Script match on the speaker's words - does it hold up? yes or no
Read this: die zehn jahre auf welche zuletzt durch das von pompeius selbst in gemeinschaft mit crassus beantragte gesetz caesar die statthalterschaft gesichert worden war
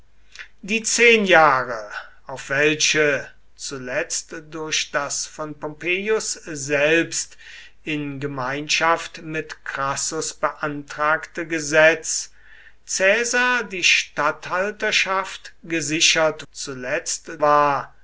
no